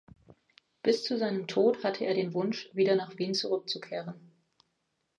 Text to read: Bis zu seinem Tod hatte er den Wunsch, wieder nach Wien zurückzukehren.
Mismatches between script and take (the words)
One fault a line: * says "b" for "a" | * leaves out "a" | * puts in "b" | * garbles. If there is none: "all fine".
all fine